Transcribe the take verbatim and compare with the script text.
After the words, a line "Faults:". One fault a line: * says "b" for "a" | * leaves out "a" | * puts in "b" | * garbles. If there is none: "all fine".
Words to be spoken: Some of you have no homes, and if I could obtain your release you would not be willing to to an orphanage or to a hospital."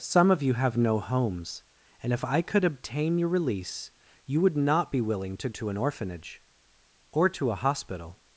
Some of you have no homes, and if I could obtain your release you would not be willing to to an orphanage or to a hospital."
Faults:
all fine